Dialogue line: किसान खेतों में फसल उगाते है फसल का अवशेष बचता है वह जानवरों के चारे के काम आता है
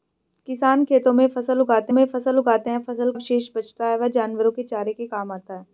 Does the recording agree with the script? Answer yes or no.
no